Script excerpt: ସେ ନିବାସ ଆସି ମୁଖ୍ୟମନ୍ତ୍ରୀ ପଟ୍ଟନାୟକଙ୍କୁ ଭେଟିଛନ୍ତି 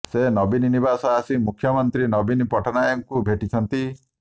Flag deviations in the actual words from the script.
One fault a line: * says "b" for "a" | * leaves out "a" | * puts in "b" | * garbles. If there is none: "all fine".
* puts in "ନବୀନ"
* puts in "ନବୀନ"